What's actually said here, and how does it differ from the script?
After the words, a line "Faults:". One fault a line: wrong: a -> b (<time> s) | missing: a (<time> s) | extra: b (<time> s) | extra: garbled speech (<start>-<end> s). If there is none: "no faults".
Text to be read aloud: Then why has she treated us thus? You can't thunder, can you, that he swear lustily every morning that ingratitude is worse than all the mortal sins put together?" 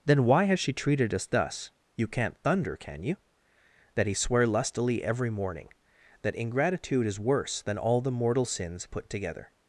Then why has she treated us thus? You can't thunder, can you, that he swear lustily every morning that ingratitude is worse than all the mortal sins put together?"
Faults:
no faults